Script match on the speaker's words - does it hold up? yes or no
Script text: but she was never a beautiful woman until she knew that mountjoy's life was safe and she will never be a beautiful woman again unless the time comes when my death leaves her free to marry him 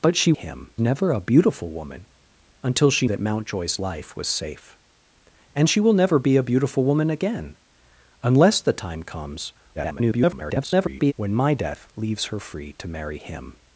no